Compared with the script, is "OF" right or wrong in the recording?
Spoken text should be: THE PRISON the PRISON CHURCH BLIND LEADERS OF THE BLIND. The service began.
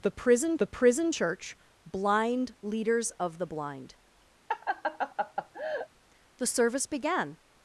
right